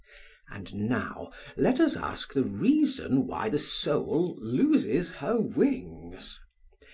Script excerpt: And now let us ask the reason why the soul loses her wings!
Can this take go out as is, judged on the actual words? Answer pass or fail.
pass